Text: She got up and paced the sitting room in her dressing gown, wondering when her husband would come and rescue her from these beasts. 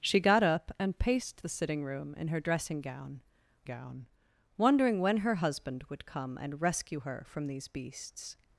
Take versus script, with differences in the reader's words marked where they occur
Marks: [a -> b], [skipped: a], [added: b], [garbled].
She got up and paced the sitting room in her dressing gown, [added: gown] wondering when her husband would come and rescue her from these beasts.